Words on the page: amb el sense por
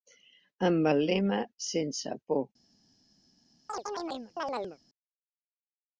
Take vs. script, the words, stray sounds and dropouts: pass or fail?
fail